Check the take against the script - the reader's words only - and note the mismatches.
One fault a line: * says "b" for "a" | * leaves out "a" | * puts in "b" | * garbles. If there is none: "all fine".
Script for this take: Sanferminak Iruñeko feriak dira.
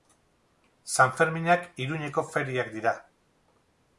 all fine